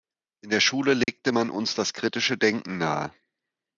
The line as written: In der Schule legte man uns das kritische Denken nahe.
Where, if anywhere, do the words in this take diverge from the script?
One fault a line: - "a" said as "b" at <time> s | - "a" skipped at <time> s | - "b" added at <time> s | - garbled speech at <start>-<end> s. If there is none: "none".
none